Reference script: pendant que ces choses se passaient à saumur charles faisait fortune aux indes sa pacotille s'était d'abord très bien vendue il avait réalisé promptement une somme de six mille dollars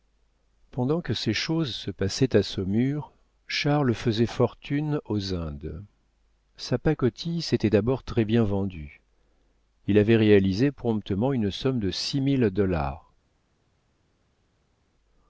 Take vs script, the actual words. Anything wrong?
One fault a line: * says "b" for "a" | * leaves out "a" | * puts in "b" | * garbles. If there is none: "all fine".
all fine